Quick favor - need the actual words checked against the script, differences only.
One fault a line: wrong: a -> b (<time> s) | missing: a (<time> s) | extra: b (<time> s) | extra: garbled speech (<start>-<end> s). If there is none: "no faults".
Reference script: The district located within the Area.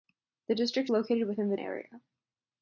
no faults